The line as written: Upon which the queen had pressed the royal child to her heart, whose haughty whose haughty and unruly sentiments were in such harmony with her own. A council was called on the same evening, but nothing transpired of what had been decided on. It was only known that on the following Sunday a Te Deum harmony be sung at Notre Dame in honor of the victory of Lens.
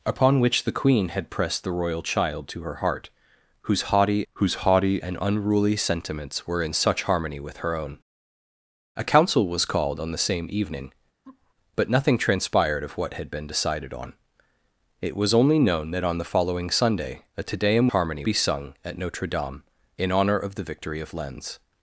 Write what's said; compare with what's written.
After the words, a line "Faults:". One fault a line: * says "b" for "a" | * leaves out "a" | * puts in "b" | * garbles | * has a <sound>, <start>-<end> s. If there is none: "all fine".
Upon which the queen had pressed the royal child to her heart, whose haughty whose haughty and unruly sentiments were in such harmony with her own. A council was called on the same evening, but nothing transpired of what had been decided on. It was only known that on the following Sunday a Te Deum harmony be sung at Notre Dame in honor of the victory of Lens.
Faults:
* has a laugh, 11.2-11.5 s